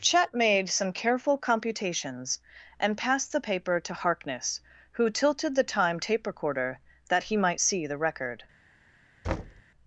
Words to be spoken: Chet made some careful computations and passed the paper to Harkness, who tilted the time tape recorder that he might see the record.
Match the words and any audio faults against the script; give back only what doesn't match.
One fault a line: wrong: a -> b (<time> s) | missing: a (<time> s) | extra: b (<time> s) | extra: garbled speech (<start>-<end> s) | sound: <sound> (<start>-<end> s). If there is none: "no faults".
sound: thud (9.2-9.6 s)